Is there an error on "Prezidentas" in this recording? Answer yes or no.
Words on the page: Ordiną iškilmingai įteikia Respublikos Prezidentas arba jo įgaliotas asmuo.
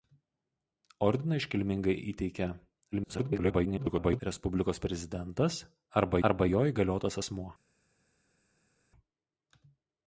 no